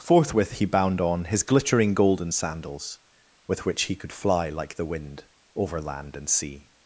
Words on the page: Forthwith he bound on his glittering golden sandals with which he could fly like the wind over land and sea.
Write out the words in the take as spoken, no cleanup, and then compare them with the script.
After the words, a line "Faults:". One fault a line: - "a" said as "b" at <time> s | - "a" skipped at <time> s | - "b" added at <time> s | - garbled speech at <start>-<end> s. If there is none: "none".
Forthwith he bound on his glittering golden sandals with which he could fly like the wind over land and sea.
Faults:
none